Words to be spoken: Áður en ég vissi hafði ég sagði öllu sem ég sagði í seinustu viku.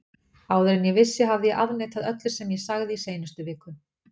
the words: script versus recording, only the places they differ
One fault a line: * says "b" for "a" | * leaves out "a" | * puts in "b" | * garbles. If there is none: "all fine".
* says "afneitað" for "sagði"